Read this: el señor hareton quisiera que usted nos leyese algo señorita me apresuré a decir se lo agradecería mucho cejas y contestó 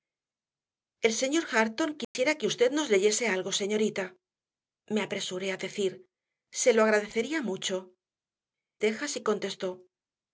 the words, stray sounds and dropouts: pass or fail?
fail